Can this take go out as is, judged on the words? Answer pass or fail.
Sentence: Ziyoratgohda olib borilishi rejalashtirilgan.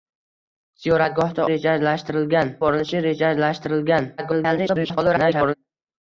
fail